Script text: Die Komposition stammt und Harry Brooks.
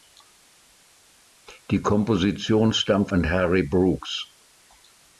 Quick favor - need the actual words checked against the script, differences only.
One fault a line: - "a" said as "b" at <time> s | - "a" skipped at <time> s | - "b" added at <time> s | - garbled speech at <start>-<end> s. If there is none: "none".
none